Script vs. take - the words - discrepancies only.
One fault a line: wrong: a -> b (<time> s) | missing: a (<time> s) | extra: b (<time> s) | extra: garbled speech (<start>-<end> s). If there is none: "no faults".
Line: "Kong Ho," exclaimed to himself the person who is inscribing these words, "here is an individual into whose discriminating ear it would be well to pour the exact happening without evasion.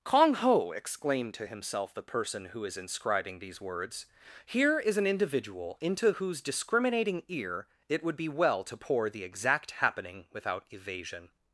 no faults